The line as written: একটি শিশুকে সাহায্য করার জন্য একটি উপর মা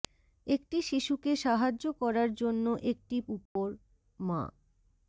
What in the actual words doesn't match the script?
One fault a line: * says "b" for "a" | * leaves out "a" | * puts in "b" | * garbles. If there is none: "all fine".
all fine